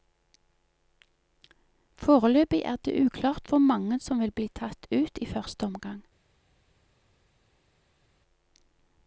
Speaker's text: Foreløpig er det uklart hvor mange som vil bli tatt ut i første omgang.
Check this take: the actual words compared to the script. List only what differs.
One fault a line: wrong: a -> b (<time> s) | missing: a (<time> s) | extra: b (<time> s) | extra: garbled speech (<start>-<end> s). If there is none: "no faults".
no faults